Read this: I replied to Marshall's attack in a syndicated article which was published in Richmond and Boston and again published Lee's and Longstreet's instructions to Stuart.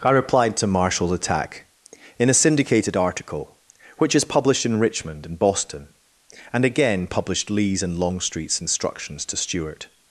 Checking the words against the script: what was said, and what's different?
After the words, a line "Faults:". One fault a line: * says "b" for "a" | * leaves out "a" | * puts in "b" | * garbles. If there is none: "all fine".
I replied to Marshall's attack in a syndicated article which is published in Richmond and Boston and again published Lee's and Longstreet's instructions to Stuart.
Faults:
* says "is" for "was"